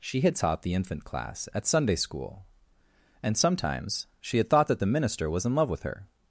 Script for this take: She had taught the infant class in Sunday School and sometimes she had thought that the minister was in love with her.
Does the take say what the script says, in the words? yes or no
no